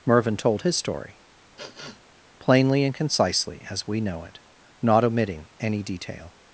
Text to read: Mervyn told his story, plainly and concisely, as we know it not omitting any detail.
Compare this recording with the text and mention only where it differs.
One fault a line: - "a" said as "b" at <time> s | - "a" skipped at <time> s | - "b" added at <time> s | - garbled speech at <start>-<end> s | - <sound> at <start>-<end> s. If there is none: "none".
- sniff at 1.6-2.0 s